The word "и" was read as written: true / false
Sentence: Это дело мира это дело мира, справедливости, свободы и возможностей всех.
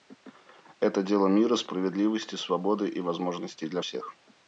true